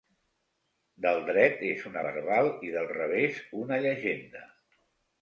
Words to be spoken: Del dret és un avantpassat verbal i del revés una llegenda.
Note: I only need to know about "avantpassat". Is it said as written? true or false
false